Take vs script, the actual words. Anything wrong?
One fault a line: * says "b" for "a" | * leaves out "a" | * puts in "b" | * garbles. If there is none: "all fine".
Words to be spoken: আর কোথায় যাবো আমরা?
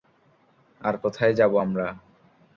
all fine